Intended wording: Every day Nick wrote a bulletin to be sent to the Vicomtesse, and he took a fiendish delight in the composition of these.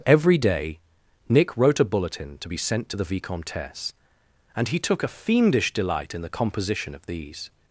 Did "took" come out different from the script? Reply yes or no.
no